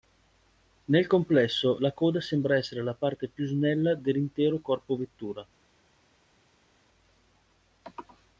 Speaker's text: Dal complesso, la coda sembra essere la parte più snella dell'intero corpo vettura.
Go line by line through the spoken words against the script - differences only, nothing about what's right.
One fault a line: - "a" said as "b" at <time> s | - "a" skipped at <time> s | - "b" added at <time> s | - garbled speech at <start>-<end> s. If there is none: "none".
- "Dal" said as "Nel" at 0.8 s